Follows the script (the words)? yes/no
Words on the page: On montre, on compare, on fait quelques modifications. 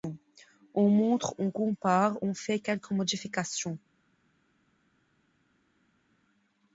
yes